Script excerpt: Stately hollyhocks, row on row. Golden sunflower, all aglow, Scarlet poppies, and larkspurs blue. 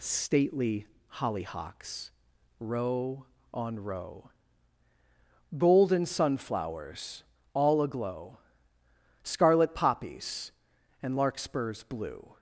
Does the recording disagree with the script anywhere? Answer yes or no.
yes